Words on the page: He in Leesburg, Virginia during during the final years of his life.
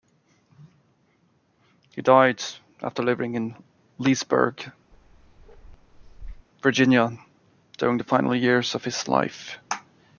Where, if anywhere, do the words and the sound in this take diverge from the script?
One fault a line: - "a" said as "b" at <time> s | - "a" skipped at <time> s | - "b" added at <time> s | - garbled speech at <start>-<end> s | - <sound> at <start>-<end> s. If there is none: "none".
- "died after living" added at 2.0 s
- bark at 4.9-6.5 s
- "during" skipped at 8.0 s